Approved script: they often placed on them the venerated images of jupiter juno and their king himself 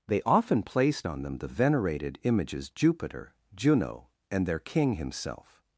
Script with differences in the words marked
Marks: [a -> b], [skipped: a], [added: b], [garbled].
they often placed on them the venerated images [skipped: of] jupiter juno and their king himself